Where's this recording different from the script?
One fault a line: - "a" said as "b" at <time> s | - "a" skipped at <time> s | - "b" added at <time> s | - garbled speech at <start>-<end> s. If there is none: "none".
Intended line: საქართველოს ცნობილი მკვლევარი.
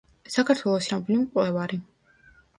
none